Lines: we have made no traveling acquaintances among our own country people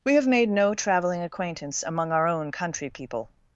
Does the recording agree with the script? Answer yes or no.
no